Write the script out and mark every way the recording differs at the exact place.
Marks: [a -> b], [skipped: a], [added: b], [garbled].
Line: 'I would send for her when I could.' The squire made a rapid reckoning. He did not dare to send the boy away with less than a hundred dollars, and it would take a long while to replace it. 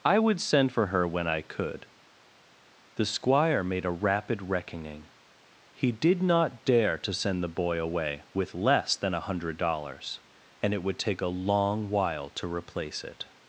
'I would send for her when I could.' The squire made a rapid reckoning. He did not dare to send the boy away with less than a hundred dollars, and it would take a long while to replace it.